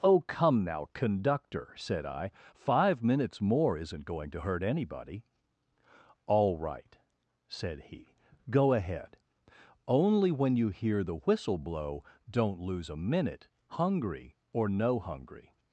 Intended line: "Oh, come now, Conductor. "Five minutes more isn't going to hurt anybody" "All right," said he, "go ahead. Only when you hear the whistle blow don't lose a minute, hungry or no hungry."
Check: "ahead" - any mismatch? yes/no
no